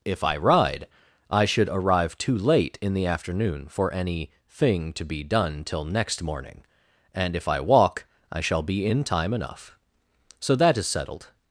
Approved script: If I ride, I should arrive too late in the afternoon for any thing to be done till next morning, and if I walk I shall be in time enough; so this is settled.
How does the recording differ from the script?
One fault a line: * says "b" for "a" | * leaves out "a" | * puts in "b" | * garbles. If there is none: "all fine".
* says "that" for "this"